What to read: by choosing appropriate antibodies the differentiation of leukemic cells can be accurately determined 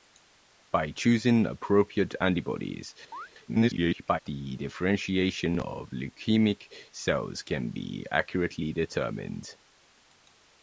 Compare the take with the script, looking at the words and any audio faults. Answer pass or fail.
fail